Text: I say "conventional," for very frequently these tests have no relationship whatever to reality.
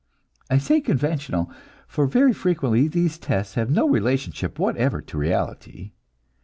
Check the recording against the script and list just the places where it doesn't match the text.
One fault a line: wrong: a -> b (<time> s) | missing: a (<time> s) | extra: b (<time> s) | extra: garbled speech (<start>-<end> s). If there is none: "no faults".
no faults